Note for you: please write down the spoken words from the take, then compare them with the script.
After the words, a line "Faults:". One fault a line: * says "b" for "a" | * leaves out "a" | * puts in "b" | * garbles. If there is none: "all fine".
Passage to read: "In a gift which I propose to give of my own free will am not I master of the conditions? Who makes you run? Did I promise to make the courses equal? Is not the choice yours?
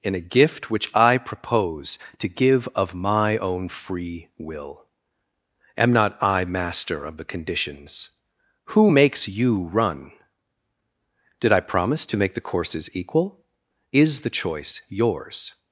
"In a gift which I propose to give of my own free will am not I master of the conditions? Who makes you run? Did I promise to make the courses equal? Is the choice yours?
Faults:
* leaves out "not"